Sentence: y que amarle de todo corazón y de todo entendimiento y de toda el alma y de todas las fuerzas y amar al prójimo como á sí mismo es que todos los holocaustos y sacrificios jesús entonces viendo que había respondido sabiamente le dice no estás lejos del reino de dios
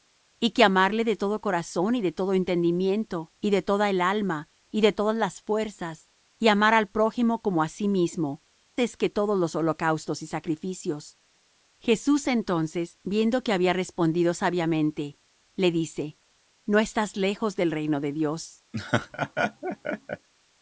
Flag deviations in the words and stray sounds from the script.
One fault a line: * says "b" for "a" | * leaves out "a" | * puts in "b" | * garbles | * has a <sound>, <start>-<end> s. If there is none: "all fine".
* has a laugh, 18.7-20.3 s